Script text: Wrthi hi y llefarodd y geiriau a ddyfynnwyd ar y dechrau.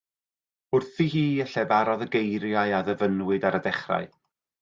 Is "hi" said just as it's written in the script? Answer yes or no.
yes